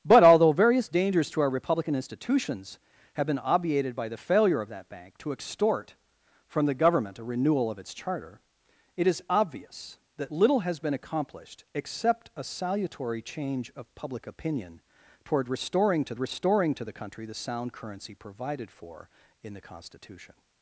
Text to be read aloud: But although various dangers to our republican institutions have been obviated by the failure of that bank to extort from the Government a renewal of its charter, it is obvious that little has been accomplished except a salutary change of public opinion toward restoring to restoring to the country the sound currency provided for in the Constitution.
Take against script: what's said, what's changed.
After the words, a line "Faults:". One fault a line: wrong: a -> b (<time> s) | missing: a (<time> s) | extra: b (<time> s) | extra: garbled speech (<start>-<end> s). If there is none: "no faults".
But although various dangers to our republican institutions have been obviated by the failure of that bank to extort from the Government a renewal of its charter, it is obvious that little has been accomplished except a salutary change of public opinion toward restoring to restoring to the country the sound currency provided for in the Constitution.
Faults:
no faults